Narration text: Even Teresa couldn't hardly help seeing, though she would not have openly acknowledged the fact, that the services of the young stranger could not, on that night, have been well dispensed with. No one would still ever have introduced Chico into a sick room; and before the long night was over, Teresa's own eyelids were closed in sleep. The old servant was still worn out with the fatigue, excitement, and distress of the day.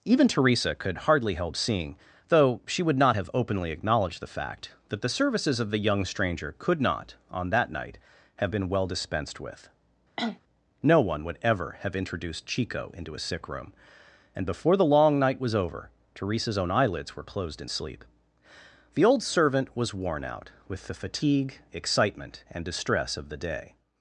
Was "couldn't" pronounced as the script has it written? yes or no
no